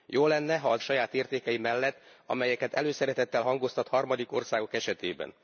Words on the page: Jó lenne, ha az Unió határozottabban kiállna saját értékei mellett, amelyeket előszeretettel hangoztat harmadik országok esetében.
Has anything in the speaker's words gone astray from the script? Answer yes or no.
yes